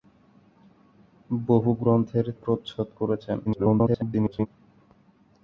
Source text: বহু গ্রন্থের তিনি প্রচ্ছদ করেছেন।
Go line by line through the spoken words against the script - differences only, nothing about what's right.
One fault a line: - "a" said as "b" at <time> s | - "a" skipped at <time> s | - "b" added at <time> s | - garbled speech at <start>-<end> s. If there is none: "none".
- "তিনি" skipped at 2.2 s
- garbled speech at 3.5-4.5 s